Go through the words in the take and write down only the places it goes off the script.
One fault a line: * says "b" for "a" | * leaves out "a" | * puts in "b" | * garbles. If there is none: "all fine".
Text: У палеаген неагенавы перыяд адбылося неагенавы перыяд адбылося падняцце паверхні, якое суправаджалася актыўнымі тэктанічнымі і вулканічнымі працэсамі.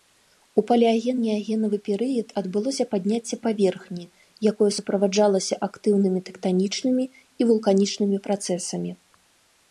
* leaves out "неагенавы перыяд адбылося"